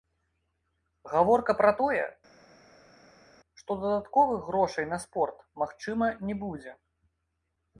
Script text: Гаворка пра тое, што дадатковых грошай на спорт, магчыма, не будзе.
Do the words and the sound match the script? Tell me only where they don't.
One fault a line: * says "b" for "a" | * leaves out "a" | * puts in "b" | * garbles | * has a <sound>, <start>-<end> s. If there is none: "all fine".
all fine